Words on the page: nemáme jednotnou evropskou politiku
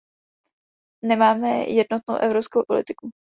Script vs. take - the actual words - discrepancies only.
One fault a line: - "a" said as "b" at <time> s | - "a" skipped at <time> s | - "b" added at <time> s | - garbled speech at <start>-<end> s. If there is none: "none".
none